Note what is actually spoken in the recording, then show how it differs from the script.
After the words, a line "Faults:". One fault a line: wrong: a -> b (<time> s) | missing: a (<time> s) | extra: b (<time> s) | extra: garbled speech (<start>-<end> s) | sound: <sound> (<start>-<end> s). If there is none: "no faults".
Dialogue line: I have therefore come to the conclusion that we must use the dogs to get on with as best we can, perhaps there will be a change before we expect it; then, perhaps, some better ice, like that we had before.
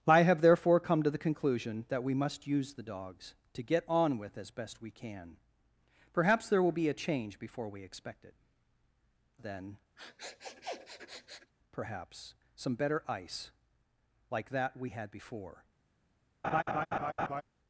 I have therefore come to the conclusion that we must use the dogs to get on with as best we can, perhaps there will be a change before we expect it; then, perhaps, some better ice, like that we had before.
Faults:
sound: sniff (10.0-11.5 s)
sound: laugh (16.4-17.4 s)